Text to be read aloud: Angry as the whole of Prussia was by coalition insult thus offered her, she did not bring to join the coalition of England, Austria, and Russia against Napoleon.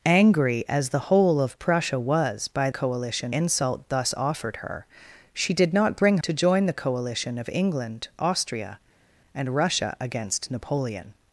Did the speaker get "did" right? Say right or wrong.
right